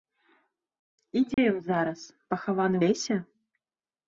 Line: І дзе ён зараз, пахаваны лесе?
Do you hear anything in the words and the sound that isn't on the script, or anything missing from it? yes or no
yes